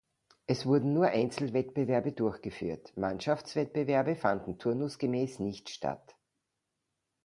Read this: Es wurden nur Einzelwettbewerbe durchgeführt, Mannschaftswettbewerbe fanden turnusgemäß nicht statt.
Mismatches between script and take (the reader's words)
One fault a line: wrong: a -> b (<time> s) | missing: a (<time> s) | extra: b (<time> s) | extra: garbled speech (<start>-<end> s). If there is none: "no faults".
no faults